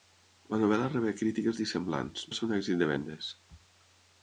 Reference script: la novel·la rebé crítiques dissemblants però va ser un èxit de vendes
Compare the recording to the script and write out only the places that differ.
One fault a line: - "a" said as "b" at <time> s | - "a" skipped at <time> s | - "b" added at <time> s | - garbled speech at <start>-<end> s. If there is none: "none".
- "però" skipped at 2.2 s